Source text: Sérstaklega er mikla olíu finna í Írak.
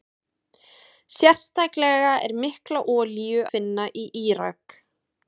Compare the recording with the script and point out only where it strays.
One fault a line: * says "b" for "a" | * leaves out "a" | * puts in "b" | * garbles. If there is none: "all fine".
all fine